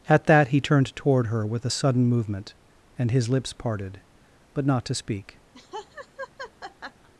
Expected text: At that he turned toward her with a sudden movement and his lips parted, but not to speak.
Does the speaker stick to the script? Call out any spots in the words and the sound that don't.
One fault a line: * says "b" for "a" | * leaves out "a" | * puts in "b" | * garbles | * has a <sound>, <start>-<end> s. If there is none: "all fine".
* has a laugh, 5.5-7.1 s